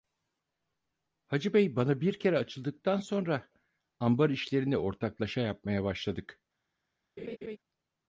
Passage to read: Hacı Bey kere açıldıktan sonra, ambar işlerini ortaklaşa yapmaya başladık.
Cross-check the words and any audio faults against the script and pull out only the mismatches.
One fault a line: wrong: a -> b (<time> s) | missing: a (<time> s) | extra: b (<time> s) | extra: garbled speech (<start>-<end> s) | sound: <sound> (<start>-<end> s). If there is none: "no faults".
extra: bana bir (1.8 s)
sound: laugh (7.2-7.6 s)